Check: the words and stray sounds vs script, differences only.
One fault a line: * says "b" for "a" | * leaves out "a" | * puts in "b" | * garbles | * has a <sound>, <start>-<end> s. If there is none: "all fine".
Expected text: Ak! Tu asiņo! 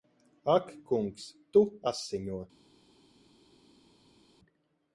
* puts in "kungs"